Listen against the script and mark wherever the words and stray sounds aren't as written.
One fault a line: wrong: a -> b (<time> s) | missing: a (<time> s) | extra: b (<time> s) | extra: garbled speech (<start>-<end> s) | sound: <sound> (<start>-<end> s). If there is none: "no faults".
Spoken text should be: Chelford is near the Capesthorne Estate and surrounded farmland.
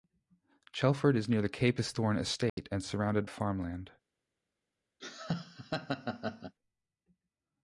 sound: dropout (2.5-2.6 s)
sound: laugh (5.0-6.5 s)